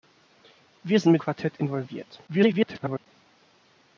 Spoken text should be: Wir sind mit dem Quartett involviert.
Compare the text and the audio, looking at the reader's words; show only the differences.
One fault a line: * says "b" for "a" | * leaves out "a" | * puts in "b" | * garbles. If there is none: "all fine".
* leaves out "dem"
* garbles